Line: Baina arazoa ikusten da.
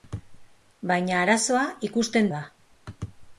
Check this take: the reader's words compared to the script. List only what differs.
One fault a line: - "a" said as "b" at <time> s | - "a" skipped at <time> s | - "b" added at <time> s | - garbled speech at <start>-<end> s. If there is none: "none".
none